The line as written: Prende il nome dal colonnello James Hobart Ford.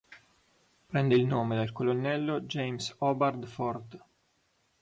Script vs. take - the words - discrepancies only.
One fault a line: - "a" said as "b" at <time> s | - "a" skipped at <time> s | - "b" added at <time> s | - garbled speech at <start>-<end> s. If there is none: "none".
none